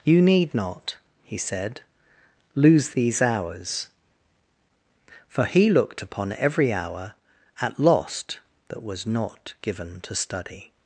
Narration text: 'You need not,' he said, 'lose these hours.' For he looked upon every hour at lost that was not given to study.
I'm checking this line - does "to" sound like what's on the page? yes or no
yes